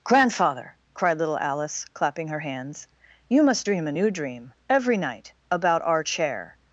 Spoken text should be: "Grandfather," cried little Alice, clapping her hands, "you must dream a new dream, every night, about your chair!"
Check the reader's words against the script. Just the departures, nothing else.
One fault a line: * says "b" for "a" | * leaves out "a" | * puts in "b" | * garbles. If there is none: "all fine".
* says "our" for "your"